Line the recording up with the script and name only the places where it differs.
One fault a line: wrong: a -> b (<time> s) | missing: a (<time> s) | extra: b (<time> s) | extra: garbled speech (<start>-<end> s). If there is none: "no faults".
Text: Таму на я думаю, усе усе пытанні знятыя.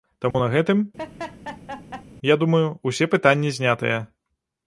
extra: гэтым (0.5 s)
missing: усе (3.1 s)